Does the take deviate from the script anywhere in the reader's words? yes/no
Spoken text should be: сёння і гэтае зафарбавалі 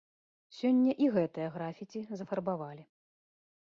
yes